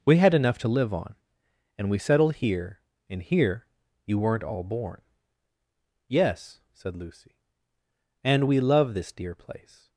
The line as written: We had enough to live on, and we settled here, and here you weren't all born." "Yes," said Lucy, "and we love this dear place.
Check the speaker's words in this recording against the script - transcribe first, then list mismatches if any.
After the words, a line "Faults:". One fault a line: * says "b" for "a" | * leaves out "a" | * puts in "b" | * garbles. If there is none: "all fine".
We had enough to live on, and we settled here, and here you weren't all born." "Yes," said Lucy, "and we love this dear place.
Faults:
all fine